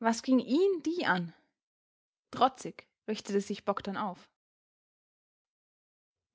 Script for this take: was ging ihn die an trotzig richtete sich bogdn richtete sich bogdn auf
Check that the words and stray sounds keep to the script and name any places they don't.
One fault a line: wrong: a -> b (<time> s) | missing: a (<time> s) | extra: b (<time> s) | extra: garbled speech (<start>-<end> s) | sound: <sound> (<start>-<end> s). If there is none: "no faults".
missing: richtete sich bogdn (4.0 s)